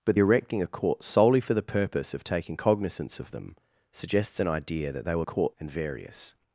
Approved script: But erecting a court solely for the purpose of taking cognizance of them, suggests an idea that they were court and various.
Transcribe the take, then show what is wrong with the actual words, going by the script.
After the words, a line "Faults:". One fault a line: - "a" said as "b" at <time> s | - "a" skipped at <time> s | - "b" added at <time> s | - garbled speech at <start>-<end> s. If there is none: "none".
But erecting a court solely for the purpose of taking cognizance of them, suggests an idea that they were court and various.
Faults:
none